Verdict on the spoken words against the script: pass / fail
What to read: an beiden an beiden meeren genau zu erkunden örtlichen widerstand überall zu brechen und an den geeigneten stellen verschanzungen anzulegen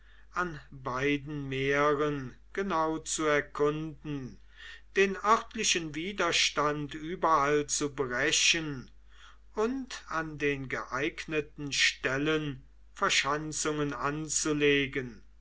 fail